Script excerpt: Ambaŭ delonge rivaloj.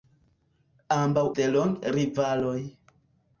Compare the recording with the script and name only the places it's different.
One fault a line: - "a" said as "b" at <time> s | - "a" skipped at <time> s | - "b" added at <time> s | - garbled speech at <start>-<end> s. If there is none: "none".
none